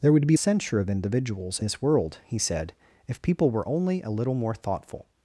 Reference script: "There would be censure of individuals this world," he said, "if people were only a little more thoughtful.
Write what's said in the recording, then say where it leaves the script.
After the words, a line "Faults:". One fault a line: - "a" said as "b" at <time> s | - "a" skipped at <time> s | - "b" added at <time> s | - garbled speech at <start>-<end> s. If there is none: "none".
"There would be censure of individuals this world," he said, "if people were only a little more thoughtful.
Faults:
none